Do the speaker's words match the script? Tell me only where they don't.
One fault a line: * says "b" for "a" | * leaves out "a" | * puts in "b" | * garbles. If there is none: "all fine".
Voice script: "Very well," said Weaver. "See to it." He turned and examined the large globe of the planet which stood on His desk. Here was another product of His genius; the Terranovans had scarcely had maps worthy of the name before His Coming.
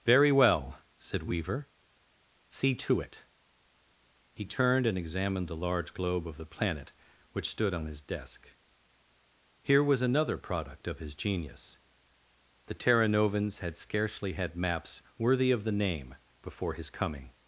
all fine